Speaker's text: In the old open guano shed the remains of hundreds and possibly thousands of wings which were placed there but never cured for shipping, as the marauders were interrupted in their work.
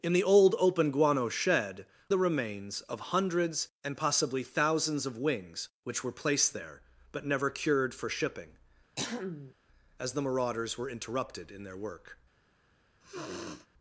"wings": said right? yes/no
yes